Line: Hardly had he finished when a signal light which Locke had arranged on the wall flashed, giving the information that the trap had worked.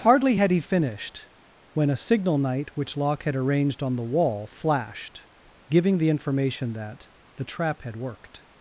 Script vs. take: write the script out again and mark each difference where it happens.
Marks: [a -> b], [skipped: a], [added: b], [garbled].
Hardly had he finished when a signal [light -> night] which Locke had arranged on the wall flashed, giving the information that the trap had worked.